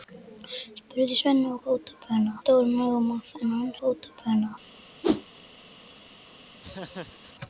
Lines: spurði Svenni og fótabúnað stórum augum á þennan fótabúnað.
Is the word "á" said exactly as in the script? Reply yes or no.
yes